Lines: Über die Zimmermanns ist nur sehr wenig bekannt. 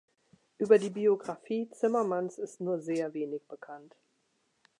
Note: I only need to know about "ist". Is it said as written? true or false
true